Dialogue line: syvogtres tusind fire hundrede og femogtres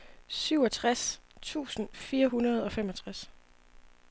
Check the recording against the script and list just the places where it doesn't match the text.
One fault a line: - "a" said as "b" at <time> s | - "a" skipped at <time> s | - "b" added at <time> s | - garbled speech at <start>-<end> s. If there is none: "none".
none